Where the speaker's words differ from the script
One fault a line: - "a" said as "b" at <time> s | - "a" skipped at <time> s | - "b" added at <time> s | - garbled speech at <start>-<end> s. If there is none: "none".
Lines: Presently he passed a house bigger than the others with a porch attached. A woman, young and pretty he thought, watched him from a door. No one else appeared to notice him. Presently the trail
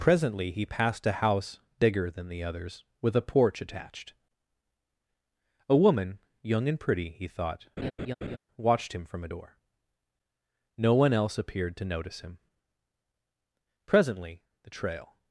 none